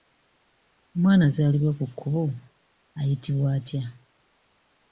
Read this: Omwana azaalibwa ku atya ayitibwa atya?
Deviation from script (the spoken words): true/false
true